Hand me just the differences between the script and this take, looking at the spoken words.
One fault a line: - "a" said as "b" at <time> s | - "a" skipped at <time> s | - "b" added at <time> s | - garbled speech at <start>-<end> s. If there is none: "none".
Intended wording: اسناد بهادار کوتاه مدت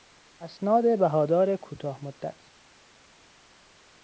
none